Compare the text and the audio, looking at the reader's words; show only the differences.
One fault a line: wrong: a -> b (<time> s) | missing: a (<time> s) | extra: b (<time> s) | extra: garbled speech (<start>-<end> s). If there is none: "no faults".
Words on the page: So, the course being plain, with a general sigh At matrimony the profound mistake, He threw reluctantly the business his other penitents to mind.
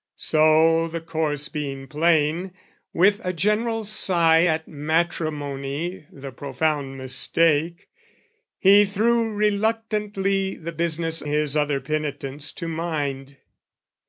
no faults